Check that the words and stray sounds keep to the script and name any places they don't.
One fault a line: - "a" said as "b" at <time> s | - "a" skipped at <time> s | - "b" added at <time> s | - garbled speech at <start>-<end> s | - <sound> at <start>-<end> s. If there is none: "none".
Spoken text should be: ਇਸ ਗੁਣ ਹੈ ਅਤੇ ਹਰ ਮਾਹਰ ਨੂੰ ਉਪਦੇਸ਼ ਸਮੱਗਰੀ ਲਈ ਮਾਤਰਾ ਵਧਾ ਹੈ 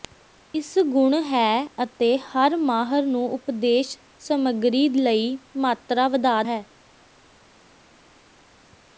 none